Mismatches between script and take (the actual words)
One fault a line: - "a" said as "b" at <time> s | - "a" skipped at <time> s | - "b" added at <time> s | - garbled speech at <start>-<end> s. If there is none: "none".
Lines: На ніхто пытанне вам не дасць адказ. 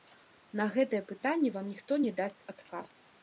- "ніхто" said as "гэтае" at 0.8 s
- "ніхто" added at 1.7 s